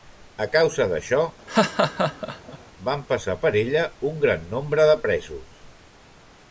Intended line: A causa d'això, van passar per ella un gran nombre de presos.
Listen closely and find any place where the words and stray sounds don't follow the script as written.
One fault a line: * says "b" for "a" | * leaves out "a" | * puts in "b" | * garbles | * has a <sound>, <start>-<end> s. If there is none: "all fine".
* has a laugh, 1.5-2.6 s